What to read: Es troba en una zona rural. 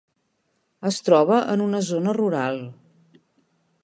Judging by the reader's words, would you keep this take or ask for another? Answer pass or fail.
pass